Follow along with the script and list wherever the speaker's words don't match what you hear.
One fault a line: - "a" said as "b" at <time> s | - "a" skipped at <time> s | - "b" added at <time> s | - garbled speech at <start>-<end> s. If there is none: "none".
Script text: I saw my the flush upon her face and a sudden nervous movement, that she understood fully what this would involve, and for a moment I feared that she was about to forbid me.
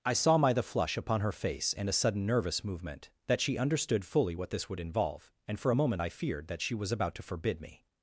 none